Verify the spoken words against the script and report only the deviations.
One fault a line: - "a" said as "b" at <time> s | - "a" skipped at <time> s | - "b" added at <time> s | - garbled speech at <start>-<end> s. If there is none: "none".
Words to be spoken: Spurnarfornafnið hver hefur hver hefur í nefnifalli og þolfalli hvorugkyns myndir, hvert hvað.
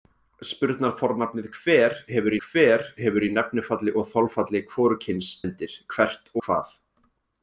none